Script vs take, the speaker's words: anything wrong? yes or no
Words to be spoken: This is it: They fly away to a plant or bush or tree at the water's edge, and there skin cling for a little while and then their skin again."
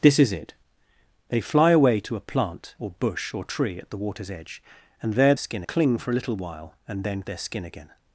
no